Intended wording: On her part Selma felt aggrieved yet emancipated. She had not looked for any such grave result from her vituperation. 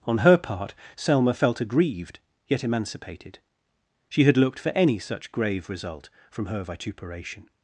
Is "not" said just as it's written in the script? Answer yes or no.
no